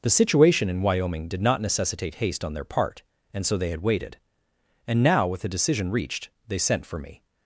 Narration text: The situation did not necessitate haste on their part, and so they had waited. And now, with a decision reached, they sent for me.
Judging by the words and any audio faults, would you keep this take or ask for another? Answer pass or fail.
fail